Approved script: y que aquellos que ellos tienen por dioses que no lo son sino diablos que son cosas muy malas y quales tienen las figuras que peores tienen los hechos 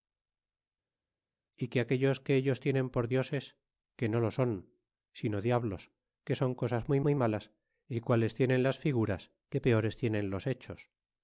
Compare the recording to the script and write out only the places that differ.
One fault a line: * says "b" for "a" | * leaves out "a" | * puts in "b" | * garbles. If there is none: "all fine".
* puts in "muy"